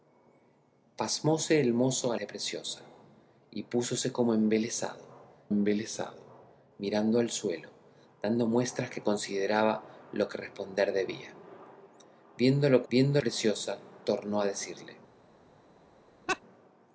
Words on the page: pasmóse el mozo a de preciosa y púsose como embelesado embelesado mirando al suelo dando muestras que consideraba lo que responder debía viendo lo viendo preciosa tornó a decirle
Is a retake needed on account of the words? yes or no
no